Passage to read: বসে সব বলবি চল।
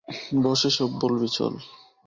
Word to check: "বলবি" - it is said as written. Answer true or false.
true